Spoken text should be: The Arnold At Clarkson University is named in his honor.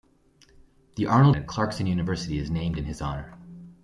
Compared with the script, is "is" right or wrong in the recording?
right